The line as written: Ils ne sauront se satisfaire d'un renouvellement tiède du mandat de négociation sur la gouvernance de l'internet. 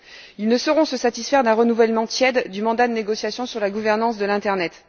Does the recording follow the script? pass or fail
pass